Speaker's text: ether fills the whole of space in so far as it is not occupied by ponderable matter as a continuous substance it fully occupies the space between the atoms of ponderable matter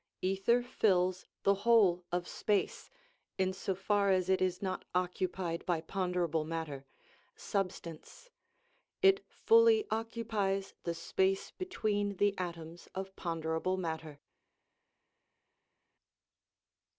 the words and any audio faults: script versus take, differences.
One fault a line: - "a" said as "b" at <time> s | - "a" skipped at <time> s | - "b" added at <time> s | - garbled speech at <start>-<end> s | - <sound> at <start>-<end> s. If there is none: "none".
- "as a continuous" skipped at 6.8 s